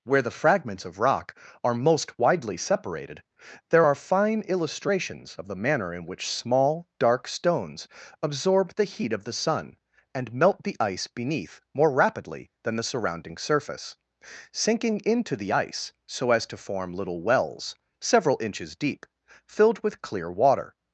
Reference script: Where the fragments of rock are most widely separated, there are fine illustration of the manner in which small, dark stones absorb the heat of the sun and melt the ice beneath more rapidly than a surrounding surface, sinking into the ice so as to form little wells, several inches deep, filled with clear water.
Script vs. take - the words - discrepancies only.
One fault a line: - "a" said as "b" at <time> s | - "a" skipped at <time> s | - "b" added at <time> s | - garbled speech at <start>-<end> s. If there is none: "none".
- "illustration" said as "illustrations" at 4.5 s
- "a" said as "the" at 12.8 s